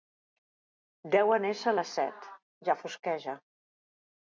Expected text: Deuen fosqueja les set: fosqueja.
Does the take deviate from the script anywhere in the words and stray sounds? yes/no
yes